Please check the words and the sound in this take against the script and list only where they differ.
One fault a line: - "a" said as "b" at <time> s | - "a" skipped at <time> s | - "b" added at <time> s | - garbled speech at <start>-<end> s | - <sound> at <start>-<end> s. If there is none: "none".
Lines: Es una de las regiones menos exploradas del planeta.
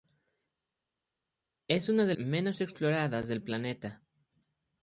- "las regiones" skipped at 2.1 s